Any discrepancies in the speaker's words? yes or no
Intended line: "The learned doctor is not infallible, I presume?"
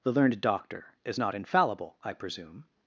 no